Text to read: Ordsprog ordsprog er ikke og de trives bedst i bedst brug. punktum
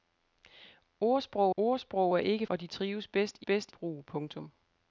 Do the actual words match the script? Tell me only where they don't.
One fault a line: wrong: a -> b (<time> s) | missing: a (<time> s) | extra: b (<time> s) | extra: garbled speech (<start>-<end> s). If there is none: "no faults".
no faults